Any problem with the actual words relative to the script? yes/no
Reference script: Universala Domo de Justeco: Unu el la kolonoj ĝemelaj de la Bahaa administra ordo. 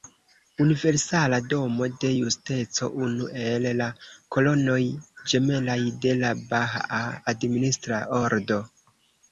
no